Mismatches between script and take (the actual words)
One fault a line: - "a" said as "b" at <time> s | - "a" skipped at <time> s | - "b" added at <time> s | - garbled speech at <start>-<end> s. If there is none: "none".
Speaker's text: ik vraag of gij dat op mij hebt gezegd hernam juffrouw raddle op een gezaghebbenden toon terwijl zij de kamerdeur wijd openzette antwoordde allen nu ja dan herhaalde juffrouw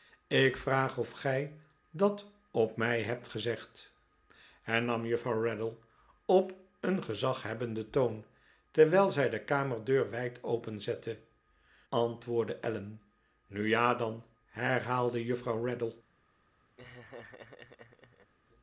none